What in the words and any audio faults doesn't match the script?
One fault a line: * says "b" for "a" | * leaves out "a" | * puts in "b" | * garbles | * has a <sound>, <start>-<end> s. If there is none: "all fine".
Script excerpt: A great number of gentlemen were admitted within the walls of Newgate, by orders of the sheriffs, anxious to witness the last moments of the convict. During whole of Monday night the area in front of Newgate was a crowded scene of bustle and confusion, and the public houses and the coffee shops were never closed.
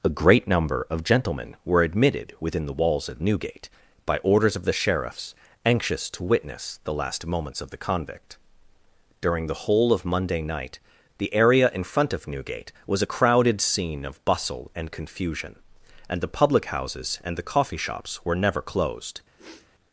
* puts in "the"
* has a sniff, 19.4-19.7 s